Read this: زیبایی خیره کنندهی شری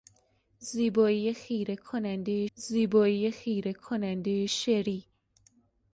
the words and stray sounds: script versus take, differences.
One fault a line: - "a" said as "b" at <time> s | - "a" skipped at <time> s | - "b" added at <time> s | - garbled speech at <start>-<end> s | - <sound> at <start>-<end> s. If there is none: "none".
- "زیبایی خیره کنندهی" added at 2.5 s